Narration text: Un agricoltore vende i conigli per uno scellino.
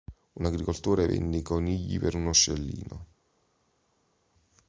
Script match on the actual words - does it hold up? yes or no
yes